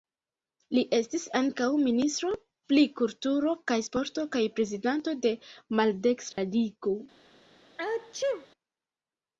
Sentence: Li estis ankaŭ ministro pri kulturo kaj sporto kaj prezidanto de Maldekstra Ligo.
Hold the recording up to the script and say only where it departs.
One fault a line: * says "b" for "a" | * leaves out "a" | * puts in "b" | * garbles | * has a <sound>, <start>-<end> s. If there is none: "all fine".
* has a dropout, 6.3-6.4 s
* has a sneeze, 7.8-8.5 s